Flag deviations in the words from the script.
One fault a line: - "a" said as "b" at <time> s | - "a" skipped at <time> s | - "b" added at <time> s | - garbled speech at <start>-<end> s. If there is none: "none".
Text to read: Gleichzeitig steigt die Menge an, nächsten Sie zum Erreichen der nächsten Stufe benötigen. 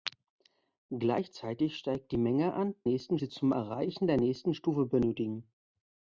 none